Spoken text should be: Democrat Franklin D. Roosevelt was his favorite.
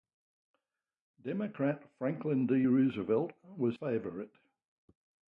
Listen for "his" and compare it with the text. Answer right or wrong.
wrong